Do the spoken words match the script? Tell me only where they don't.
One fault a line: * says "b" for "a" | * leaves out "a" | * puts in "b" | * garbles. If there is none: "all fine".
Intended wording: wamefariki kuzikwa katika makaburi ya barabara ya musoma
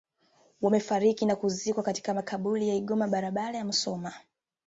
* puts in "na"
* puts in "igoma"